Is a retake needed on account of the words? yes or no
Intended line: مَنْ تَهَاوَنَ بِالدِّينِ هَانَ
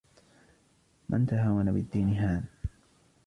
no